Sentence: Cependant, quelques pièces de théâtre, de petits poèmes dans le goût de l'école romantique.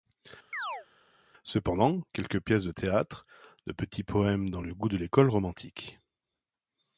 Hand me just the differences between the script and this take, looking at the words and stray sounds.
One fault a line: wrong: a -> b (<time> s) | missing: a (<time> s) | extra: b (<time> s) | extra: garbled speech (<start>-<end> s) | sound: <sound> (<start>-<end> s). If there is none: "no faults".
sound: chirp (0.5-0.9 s)